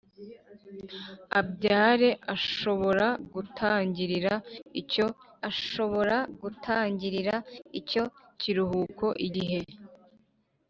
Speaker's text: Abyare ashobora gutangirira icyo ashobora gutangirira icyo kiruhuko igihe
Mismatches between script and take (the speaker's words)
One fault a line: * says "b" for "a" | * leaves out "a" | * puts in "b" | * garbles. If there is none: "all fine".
all fine